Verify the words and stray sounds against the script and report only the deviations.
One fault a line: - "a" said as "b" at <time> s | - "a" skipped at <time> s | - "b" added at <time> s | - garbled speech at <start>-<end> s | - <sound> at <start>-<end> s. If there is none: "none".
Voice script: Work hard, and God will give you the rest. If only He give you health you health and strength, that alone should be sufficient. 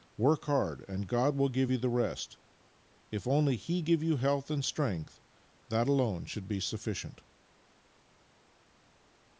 - "you health" skipped at 4.5 s